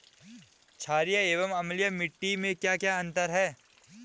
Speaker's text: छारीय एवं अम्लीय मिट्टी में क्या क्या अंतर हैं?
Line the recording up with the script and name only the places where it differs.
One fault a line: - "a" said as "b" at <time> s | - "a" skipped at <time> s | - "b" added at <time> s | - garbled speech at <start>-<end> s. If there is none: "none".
none